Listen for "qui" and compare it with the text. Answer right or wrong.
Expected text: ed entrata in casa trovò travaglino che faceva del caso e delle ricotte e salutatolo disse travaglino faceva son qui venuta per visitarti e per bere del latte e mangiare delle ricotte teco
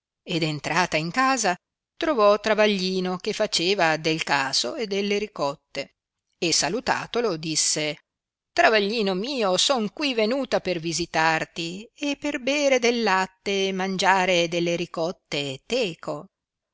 right